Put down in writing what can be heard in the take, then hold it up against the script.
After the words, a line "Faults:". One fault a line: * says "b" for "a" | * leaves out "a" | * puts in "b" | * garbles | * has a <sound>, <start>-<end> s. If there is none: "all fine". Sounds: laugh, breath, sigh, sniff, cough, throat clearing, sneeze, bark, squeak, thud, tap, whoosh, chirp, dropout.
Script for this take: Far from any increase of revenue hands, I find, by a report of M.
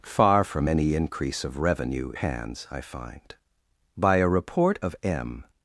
Far from any increase of revenue hands, I find, by a report of M.
Faults:
all fine